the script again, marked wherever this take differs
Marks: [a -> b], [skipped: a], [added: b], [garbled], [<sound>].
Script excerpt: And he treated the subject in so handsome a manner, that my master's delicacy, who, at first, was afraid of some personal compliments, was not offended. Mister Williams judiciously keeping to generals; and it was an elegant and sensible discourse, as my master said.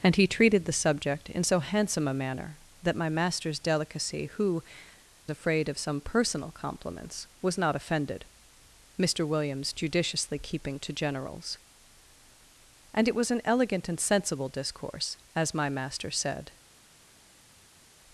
And he treated the subject in so handsome a manner, that my master's delicacy, who, [skipped: at first, was] afraid of some personal compliments, was not offended. Mister Williams judiciously keeping to generals; and it was an elegant and sensible discourse, as my master said.